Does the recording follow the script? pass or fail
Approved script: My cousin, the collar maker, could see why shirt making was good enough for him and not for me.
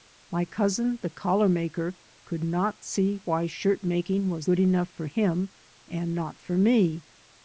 fail